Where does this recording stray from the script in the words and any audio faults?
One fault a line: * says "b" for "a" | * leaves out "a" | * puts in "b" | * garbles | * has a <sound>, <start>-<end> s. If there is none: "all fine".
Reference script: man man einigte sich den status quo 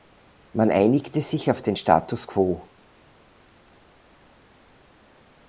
* leaves out "man"
* puts in "auf"